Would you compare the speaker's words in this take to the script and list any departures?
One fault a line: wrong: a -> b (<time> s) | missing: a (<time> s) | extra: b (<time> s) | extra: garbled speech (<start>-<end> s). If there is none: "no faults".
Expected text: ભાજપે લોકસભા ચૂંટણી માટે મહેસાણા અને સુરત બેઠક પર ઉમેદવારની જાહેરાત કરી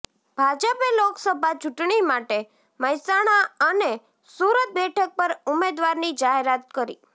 no faults